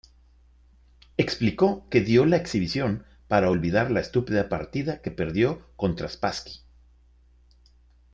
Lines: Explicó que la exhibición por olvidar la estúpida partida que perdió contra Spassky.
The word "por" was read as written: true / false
false